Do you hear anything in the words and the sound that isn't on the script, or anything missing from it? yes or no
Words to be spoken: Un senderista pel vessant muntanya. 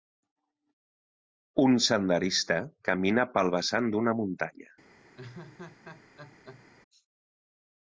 yes